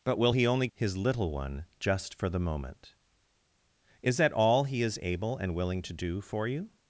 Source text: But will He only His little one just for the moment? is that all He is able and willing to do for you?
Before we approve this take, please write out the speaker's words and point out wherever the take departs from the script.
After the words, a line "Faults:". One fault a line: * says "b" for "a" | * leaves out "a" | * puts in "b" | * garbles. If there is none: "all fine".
But will He only His little one just for the moment? is that all He is able and willing to do for you?
Faults:
all fine